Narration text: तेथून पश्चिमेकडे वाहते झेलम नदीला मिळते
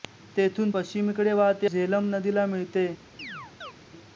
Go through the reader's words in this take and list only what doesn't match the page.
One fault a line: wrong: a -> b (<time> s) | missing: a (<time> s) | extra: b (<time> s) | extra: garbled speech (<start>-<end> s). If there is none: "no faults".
no faults